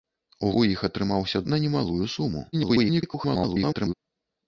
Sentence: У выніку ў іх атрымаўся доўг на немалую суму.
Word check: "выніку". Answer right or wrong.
wrong